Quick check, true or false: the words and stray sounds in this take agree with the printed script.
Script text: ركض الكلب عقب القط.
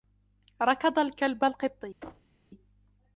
false